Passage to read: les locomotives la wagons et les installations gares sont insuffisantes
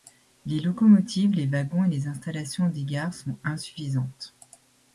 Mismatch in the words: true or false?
true